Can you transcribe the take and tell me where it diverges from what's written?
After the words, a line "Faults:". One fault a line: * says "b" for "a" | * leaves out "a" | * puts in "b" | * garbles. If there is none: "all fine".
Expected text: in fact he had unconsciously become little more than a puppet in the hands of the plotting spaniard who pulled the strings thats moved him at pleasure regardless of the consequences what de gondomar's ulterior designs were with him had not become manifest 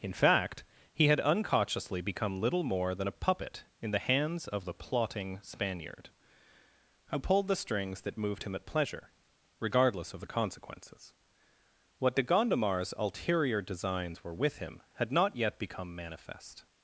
in fact he had unconsciously become little more than a puppet in the hands of the plotting spaniard who pulled the strings that moved him at pleasure regardless of the consequences what de gondomar's ulterior designs were with him had not yet become manifest
Faults:
* says "that" for "thats"
* puts in "yet"